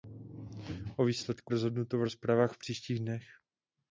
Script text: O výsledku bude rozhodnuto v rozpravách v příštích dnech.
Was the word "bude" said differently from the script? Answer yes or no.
yes